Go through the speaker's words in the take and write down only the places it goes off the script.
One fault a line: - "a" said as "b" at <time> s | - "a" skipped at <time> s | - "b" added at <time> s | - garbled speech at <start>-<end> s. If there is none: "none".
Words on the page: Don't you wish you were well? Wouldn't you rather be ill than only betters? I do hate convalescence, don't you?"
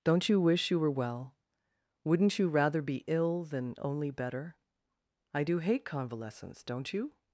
- "betters" said as "better" at 4.1 s